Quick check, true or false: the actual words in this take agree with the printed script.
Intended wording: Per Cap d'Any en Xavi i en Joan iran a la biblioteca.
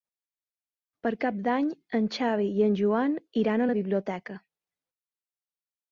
true